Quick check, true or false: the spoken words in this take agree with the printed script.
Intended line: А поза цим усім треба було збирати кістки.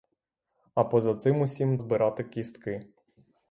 false